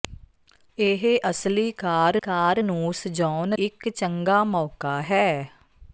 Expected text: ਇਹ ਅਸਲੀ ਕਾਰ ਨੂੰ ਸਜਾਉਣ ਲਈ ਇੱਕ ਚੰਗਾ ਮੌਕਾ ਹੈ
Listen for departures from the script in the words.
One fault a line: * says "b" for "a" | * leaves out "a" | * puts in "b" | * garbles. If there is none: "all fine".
* puts in "ਕਾਰ"
* leaves out "ਲਈ"